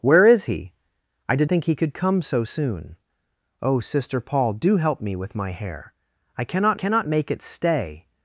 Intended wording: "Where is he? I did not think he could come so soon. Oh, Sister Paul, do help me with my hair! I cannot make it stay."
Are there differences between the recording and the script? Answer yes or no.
yes